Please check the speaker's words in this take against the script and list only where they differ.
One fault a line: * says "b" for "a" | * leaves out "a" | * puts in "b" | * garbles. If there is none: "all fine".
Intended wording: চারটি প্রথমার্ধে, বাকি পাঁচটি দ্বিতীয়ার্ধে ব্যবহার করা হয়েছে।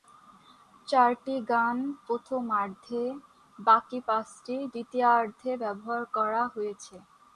* puts in "গান"